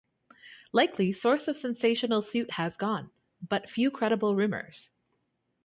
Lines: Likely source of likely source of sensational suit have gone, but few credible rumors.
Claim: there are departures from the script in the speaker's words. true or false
true